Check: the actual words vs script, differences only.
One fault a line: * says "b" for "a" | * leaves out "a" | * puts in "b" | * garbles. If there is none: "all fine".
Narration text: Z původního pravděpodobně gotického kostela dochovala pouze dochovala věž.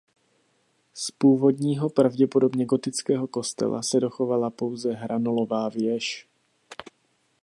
* puts in "se"
* says "hranolová" for "dochovala"